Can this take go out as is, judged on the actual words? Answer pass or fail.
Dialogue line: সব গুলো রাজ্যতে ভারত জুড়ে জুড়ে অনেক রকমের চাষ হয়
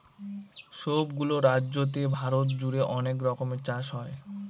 fail